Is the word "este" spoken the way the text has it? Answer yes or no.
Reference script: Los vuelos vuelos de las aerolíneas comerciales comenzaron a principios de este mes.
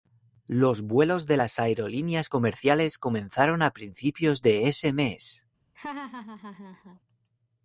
no